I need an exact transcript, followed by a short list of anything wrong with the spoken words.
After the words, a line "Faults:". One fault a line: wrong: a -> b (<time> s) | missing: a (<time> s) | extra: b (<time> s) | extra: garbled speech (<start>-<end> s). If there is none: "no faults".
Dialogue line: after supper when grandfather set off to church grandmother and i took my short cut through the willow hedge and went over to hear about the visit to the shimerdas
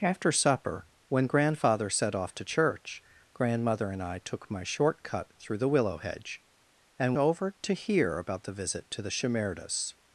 after supper when grandfather set off to church grandmother and i took my short cut through the willow hedge and over to hear about the visit to the shimerdas
Faults:
missing: went (7.2 s)